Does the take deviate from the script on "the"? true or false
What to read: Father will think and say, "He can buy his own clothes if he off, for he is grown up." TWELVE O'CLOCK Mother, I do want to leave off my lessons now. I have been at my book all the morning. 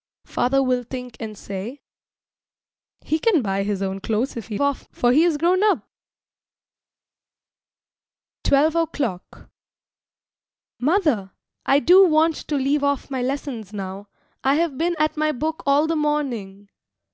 false